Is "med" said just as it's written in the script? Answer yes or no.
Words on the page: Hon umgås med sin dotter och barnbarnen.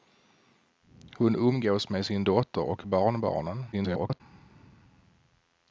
yes